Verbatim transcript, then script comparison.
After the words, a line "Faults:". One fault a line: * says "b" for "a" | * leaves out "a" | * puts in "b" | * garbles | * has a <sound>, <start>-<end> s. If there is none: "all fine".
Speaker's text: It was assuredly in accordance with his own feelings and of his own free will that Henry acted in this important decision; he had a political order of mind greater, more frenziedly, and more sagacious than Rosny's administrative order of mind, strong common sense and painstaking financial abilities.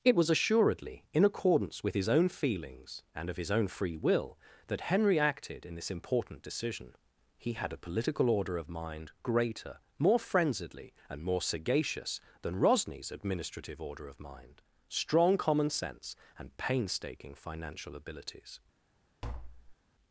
It was assuredly in accordance with his own feelings and of his own free will that Henry acted in this important decision; he had a political order of mind greater, more frenziedly, and more sagacious than Rosny's administrative order of mind, strong common sense and painstaking financial abilities.
Faults:
* has a tap, 19.2-19.8 s